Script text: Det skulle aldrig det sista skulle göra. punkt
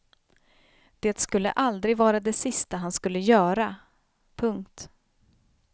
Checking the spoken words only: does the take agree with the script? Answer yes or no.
no